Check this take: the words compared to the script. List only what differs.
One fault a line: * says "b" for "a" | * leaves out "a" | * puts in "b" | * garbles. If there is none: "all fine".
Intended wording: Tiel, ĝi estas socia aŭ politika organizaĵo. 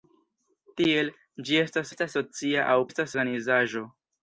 * puts in "estas"
* says "estas" for "politika"